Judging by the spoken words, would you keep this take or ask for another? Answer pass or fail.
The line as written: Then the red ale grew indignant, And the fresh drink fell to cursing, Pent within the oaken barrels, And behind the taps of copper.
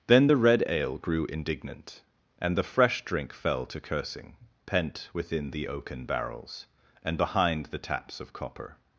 pass